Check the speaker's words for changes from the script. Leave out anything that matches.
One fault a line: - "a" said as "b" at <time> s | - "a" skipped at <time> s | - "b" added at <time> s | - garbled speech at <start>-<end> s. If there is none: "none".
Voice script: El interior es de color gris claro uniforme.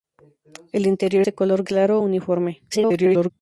- "es" skipped at 1.2 s
- "gris" skipped at 1.6 s
- garbled speech at 2.7-3.3 s